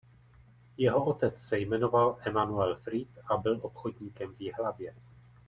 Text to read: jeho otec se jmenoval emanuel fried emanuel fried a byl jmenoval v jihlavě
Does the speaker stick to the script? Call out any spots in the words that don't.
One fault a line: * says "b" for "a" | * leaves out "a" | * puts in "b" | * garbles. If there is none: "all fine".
* leaves out "emanuel fried"
* says "obchodníkem" for "jmenoval"